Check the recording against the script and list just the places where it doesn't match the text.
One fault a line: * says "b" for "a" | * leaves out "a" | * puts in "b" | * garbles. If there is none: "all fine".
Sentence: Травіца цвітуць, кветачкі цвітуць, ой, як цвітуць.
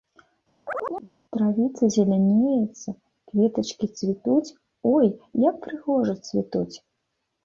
* says "зелянеецца" for "цвітуць"
* puts in "прыгожа"